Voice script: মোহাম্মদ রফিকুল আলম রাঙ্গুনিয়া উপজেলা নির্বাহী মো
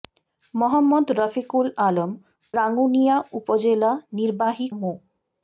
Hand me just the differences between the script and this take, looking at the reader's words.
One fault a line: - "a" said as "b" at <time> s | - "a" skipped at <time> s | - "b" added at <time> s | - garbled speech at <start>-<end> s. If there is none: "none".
none